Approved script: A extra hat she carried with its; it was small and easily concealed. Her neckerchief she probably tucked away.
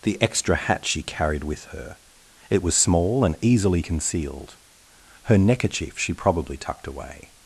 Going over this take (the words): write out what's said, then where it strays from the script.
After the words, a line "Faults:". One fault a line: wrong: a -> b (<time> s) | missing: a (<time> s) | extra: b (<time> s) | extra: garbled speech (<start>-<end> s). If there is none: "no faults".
The extra hat she carried with her; it was small and easily concealed. Her neckerchief she probably tucked away.
Faults:
wrong: A -> The (0.0 s)
wrong: its -> her (1.6 s)